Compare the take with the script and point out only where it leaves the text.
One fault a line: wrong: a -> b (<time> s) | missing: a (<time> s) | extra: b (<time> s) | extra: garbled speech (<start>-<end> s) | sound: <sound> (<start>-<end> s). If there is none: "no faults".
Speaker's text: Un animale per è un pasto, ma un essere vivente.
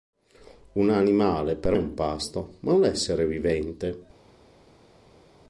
no faults